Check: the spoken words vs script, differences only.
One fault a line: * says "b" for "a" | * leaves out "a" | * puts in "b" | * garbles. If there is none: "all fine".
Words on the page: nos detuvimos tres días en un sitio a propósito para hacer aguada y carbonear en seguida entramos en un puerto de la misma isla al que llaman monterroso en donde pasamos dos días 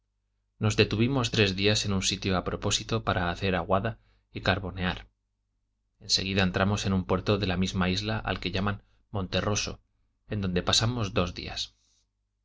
all fine